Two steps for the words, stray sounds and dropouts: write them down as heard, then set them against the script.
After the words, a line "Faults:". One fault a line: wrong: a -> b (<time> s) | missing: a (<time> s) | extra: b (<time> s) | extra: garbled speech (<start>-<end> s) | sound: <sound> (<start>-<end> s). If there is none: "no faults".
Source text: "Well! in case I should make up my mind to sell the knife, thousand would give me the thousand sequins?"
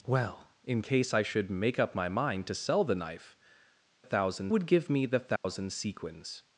"Well! in case I should make up my mind to sell the knife, thousand would give me the thousand sequins?"
Faults:
sound: dropout (5.4-5.4 s)